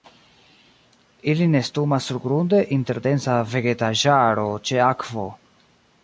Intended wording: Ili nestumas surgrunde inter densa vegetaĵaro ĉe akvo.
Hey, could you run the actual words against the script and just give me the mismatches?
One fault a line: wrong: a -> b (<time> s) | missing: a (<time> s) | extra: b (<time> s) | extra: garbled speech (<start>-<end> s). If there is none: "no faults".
no faults